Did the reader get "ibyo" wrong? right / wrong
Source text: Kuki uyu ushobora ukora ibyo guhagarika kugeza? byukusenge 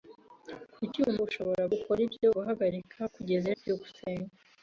right